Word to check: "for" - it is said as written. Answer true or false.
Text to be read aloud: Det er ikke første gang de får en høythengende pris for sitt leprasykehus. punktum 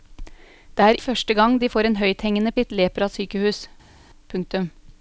false